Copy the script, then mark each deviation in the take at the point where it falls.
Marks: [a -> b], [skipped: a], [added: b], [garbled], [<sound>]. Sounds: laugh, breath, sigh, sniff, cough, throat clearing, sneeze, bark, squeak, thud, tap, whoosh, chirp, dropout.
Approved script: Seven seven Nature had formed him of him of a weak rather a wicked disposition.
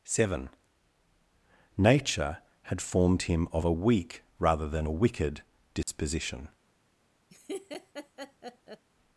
Seven [skipped: seven] Nature had formed him of [skipped: him of] a weak rather [added: than] a wicked disposition. [dropout] [laugh]